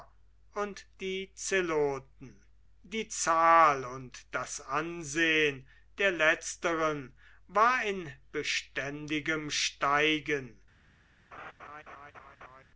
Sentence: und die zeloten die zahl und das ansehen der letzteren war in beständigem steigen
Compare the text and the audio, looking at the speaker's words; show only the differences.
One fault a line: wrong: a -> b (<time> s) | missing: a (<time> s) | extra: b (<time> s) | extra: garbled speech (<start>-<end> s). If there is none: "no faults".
no faults